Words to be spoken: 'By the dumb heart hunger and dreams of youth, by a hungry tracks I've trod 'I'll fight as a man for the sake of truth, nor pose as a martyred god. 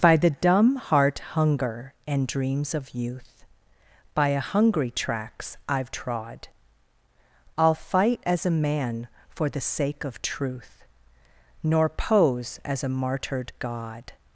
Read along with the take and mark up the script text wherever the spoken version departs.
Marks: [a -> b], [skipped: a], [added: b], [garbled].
'By the dumb heart hunger and dreams of youth, by a hungry tracks I've trod 'I'll fight as a man for the sake of truth, nor pose as a martyred god.